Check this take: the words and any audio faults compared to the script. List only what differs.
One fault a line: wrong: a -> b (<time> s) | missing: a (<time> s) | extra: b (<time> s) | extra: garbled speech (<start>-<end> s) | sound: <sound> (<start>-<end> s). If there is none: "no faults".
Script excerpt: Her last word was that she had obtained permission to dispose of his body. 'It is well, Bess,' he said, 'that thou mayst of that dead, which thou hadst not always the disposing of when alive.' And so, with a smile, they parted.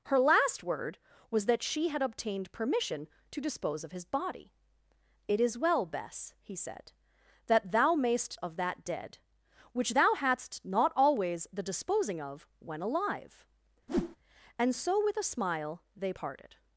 sound: whoosh (13.9-14.2 s)